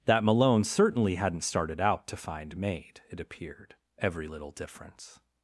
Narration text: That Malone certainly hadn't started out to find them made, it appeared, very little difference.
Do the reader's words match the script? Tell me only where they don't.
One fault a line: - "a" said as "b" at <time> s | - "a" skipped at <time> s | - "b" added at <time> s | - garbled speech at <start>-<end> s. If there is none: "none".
- "them" skipped at 2.6 s
- "very" said as "every" at 4.0 s